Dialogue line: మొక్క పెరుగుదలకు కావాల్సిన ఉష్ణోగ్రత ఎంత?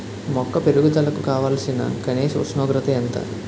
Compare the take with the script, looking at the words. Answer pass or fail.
fail